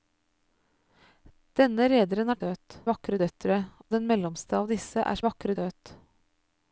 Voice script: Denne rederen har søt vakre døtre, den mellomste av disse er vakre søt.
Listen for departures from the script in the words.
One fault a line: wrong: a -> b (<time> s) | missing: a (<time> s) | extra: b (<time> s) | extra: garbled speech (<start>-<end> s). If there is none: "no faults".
no faults